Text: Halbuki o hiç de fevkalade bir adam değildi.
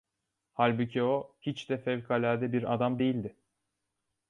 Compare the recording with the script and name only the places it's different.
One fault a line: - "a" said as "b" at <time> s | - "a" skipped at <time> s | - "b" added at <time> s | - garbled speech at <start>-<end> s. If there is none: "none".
none